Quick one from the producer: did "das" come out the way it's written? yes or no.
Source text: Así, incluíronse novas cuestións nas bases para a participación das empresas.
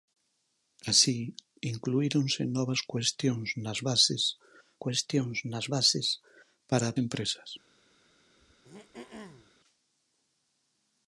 no